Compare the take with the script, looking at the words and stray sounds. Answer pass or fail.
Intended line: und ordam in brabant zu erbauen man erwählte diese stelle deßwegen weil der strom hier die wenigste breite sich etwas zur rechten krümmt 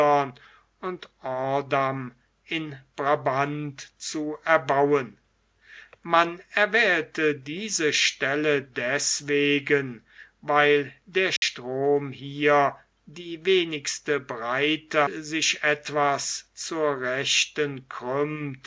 fail